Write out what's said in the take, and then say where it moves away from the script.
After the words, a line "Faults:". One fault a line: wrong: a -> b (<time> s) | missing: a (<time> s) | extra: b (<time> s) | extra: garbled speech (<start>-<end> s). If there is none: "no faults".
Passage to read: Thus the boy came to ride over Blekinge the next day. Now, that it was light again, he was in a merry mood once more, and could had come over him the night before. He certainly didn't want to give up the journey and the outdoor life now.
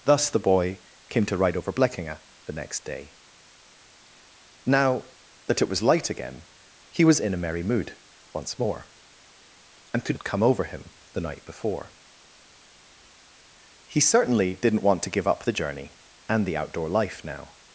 Thus the boy came to ride over Blekinge the next day. Now, that it was light again, he was in a merry mood once more, and could had come over him the night before. He certainly didn't want to give up the journey and the outdoor life now.
Faults:
no faults